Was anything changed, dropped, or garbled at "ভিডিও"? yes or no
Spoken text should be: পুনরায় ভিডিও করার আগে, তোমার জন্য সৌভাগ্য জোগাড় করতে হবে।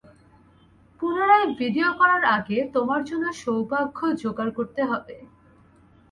no